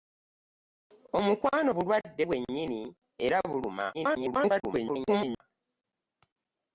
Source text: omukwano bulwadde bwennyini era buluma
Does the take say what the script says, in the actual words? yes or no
no